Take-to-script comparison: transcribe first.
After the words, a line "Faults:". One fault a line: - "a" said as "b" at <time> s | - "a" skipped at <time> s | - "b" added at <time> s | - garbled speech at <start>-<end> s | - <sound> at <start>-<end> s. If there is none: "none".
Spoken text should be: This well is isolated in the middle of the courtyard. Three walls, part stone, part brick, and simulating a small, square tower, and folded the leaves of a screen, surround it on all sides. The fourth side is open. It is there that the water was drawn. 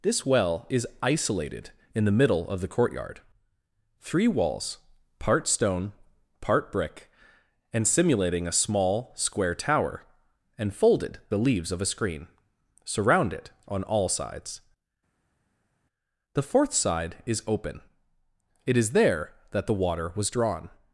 This well is isolated in the middle of the courtyard. Three walls, part stone, part brick, and simulating a small, square tower, and folded the leaves of a screen, surround it on all sides. The fourth side is open. It is there that the water was drawn.
Faults:
none